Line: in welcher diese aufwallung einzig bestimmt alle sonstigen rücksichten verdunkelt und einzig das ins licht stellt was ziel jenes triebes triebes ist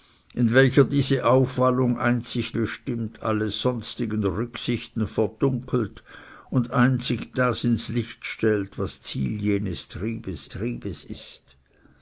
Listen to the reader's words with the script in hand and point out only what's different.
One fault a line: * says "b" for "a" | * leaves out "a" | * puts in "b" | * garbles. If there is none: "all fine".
all fine